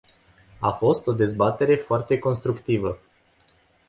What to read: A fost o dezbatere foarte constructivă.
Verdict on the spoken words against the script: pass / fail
pass